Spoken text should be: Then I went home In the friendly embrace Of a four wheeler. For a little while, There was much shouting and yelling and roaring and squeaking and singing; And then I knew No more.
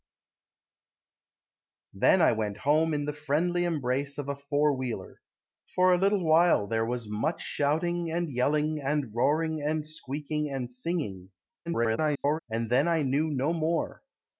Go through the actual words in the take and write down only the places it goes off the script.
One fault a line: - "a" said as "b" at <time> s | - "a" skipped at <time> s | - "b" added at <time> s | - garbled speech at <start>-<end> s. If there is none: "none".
- garbled speech at 11.7-12.4 s